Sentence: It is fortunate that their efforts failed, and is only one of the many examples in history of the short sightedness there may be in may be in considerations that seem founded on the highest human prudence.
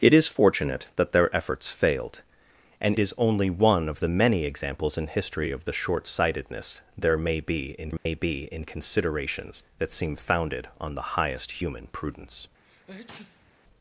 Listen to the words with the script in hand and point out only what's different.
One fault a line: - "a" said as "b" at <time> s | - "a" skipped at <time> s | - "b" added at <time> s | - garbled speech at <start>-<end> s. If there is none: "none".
none